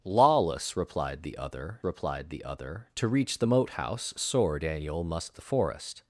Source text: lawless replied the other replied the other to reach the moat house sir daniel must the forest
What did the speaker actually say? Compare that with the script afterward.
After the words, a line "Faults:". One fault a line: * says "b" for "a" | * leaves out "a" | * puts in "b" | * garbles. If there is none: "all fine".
lawless replied the other replied the other to reach the moat house sir daniel must the forest
Faults:
all fine